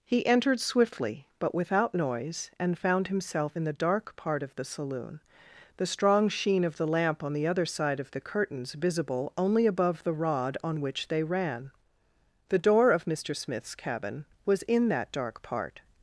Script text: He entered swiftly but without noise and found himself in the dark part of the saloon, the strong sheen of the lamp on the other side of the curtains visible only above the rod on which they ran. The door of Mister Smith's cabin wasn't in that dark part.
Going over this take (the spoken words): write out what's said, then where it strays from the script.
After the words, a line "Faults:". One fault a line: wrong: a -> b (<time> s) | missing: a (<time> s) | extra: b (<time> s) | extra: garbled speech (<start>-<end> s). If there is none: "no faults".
He entered swiftly but without noise and found himself in the dark part of the saloon, the strong sheen of the lamp on the other side of the curtains visible only above the rod on which they ran. The door of Mister Smith's cabin was in that dark part.
Faults:
wrong: wasn't -> was (14.4 s)